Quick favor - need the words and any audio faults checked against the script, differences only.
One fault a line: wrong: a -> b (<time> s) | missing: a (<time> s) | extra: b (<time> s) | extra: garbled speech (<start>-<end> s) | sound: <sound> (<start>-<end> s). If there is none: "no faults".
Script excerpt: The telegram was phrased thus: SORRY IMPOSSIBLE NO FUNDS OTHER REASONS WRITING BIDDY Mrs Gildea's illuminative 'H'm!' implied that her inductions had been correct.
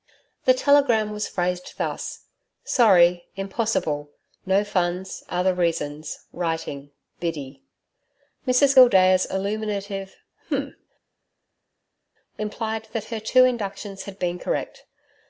extra: two (13.2 s)